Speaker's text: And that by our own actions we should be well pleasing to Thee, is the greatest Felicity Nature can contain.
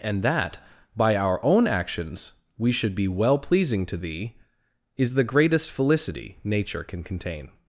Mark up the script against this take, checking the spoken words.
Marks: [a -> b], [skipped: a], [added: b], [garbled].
And that by our own actions we should be well pleasing to Thee, is the greatest Felicity Nature can contain.